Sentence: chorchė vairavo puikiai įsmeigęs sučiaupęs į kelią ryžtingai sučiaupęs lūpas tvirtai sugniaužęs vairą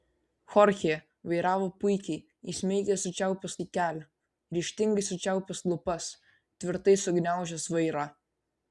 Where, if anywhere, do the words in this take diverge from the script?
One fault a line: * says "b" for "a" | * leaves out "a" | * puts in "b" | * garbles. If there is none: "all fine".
all fine